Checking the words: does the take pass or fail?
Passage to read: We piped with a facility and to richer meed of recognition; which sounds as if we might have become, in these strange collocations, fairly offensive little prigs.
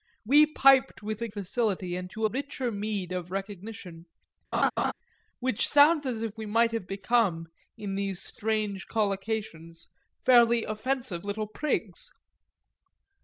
pass